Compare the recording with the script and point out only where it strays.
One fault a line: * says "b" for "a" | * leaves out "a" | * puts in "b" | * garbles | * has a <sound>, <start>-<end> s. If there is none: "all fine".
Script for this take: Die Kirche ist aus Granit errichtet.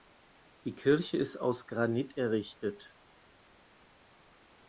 all fine